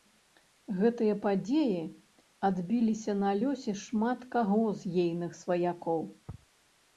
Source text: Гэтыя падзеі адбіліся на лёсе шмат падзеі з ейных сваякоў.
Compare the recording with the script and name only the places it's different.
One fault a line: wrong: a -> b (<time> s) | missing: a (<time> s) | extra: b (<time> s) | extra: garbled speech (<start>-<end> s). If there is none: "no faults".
wrong: падзеі -> каго (4.4 s)